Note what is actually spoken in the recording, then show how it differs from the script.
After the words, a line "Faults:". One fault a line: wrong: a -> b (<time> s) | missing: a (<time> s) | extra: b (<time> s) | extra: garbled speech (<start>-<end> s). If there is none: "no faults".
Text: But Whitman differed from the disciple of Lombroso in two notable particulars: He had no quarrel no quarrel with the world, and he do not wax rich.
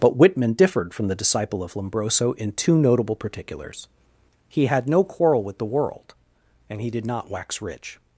But Whitman differed from the disciple of Lombroso in two notable particulars: He had no quarrel with the world, and he did not wax rich.
Faults:
missing: no quarrel (5.4 s)
wrong: do -> did (6.9 s)